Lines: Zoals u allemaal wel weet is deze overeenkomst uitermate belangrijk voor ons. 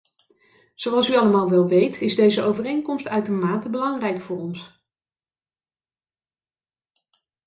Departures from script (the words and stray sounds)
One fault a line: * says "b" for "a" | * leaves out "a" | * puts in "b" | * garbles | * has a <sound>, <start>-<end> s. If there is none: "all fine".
all fine